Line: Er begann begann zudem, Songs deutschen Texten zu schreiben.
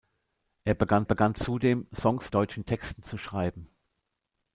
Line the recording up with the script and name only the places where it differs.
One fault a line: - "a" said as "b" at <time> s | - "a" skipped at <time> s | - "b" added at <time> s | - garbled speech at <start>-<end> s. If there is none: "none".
none